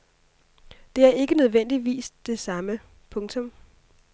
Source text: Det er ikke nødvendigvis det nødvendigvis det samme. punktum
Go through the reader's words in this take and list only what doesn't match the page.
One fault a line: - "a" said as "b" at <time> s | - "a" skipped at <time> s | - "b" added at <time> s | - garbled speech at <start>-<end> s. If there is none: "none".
- "nødvendigvis det" skipped at 2.4 s